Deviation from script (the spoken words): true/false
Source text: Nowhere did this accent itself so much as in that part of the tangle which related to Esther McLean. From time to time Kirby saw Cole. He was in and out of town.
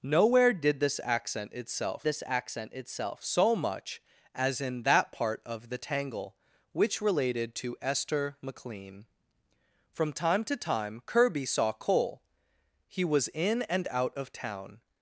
true